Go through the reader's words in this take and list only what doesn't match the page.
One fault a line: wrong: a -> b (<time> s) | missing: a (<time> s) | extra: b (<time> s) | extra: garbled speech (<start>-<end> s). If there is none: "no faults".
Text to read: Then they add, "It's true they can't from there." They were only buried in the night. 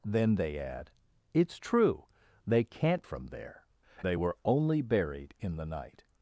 no faults